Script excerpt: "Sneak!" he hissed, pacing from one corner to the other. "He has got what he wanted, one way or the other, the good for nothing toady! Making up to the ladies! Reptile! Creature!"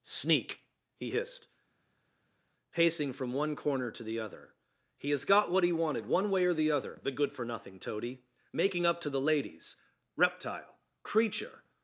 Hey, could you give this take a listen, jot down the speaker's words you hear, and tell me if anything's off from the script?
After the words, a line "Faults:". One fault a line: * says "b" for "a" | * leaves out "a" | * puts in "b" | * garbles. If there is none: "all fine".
"Sneak!" he hissed, pacing from one corner to the other. "He has got what he wanted, one way or the other, the good for nothing toady! Making up to the ladies! Reptile! Creature!"
Faults:
all fine